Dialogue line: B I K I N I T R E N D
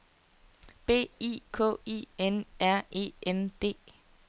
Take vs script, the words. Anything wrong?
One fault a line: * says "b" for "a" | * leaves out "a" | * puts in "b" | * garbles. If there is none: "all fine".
* leaves out "I T"